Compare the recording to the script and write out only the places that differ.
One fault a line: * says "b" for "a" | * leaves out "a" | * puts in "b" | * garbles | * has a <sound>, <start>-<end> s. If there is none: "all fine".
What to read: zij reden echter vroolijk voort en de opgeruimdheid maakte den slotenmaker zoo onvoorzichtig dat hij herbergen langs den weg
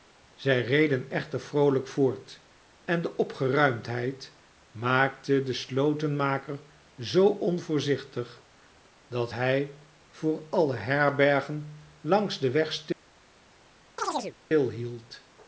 * puts in "voor alle"
* has a chirp, 14.0-14.4 s